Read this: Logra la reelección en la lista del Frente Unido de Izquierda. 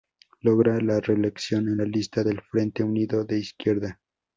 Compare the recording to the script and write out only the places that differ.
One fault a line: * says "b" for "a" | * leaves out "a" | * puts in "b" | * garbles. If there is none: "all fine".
all fine